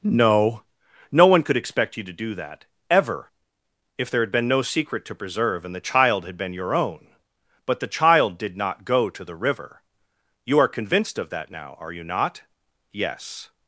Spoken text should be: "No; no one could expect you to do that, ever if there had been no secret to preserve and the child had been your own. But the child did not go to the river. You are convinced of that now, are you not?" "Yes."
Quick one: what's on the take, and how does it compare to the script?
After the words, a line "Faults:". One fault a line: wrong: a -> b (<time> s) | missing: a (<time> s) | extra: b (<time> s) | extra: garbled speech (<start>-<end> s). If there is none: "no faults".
"No; no one could expect you to do that, ever if there had been no secret to preserve and the child had been your own. But the child did not go to the river. You are convinced of that now, are you not?" "Yes."
Faults:
no faults